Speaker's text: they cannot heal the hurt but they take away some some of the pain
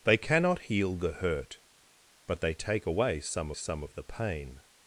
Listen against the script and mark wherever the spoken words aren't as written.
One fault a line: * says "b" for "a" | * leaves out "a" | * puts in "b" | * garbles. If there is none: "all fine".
all fine